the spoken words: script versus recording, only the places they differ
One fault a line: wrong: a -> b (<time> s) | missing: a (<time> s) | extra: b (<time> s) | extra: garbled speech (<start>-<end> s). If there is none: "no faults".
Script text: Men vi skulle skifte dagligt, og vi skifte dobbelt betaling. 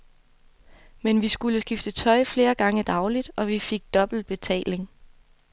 extra: tøj flere gange (1.9 s)
wrong: skifte -> fik (3.6 s)